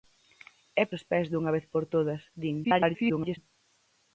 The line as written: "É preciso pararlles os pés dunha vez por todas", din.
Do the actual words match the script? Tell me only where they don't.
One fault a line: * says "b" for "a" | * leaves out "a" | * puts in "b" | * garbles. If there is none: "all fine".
* leaves out "preciso pararlles"
* garbles